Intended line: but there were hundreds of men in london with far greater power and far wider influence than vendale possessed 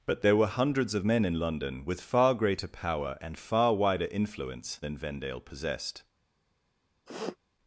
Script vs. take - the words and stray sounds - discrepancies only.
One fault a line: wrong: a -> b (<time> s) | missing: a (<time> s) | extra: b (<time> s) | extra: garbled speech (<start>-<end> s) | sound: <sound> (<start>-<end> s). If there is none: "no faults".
sound: sniff (7.1-7.4 s)